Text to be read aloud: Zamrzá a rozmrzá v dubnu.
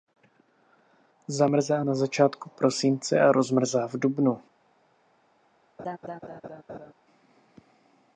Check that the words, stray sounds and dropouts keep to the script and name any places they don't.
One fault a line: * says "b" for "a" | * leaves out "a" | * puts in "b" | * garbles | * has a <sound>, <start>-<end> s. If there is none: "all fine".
* puts in "na začátku prosince"
* has a laugh, 5.8-6.9 s